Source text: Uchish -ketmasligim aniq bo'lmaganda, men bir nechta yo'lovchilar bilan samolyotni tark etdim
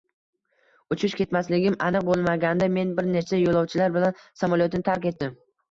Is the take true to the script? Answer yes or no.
yes